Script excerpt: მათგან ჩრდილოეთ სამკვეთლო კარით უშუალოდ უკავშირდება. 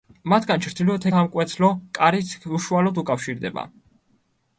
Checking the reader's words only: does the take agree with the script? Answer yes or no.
yes